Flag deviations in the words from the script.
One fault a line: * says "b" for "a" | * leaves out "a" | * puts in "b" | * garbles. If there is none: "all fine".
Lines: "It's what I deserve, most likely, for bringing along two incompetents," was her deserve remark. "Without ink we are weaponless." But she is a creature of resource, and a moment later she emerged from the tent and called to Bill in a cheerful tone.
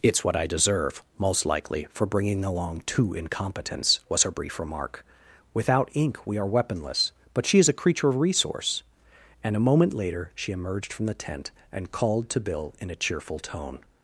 * says "brief" for "deserve"